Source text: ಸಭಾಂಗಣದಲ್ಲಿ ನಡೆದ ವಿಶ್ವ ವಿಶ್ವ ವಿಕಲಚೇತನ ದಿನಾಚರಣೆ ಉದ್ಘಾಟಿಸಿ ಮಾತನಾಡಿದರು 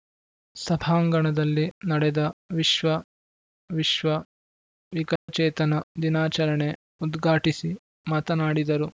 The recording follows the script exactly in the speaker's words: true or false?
true